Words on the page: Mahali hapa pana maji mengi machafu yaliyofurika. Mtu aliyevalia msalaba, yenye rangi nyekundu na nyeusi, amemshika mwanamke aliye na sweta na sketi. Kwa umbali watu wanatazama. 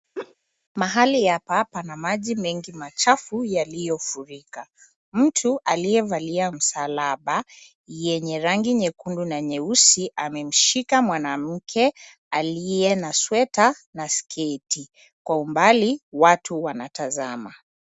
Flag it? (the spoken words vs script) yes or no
no